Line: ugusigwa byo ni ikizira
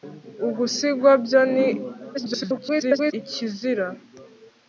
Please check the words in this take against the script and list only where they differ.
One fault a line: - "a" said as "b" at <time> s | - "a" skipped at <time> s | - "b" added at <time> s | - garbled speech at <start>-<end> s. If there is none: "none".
- garbled speech at 2.1-3.1 s